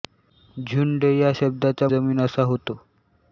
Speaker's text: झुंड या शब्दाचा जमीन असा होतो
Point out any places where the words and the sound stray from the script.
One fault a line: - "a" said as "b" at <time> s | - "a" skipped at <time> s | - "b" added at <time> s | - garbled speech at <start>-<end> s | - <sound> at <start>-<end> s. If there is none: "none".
none